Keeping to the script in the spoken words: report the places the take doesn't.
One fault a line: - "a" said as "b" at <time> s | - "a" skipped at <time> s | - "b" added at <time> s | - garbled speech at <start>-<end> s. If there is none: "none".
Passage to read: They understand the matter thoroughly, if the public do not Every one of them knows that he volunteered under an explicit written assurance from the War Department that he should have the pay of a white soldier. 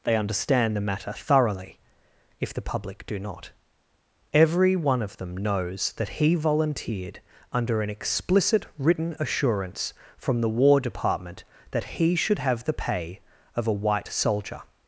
none